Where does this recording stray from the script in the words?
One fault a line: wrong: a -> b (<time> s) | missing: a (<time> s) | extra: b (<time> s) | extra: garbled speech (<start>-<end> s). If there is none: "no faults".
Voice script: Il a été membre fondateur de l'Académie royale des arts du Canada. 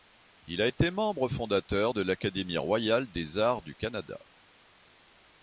no faults